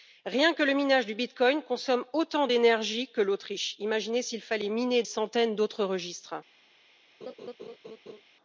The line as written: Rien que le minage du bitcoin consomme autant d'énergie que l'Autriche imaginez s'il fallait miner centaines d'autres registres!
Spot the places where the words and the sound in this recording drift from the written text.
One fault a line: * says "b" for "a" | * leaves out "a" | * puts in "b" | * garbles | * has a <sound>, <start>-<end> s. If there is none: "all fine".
* has a laugh, 7.2-8.2 s